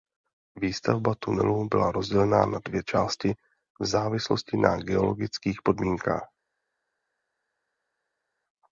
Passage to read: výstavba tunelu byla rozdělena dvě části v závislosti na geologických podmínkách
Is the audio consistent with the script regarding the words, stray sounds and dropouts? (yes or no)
no